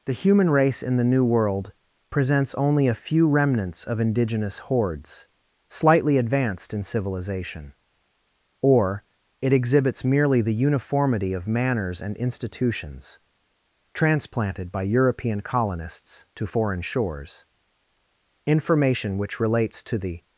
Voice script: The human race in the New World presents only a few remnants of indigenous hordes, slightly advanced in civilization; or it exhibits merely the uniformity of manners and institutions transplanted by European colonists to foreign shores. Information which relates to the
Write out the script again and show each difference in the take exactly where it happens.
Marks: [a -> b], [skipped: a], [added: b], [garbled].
The human race in the New World presents only a few remnants of indigenous hordes, slightly advanced in civilization; or it exhibits merely the uniformity of manners and institutions transplanted by European colonists to foreign shores. Information which relates to the